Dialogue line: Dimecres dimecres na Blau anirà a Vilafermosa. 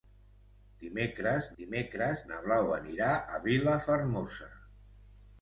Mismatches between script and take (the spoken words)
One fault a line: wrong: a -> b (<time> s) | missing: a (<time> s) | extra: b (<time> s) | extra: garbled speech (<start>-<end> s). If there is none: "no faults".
no faults